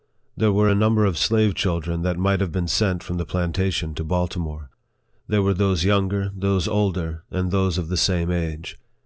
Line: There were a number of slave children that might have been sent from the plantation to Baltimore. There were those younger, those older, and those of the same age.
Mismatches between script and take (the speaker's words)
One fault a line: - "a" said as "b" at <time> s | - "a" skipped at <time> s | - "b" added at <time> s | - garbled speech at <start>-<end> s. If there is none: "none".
none